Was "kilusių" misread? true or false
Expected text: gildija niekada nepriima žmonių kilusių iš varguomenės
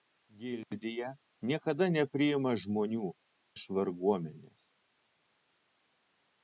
true